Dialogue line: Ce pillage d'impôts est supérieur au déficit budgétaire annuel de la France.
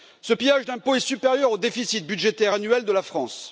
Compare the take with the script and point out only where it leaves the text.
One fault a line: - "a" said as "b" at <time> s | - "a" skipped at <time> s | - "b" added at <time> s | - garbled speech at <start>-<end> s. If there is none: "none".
none